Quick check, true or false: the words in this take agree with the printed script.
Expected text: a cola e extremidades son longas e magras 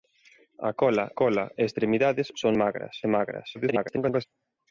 false